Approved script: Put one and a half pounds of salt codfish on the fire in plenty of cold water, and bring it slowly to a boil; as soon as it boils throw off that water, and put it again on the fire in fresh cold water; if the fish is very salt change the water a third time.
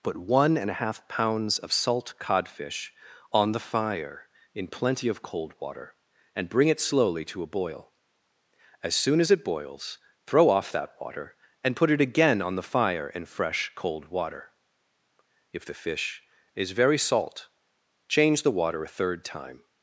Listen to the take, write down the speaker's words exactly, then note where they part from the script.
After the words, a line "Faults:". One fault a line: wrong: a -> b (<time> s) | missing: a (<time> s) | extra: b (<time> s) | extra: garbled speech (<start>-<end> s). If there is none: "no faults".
Put one and a half pounds of salt codfish on the fire in plenty of cold water, and bring it slowly to a boil; as soon as it boils throw off that water, and put it again on the fire in fresh cold water; if the fish is very salt change the water a third time.
Faults:
no faults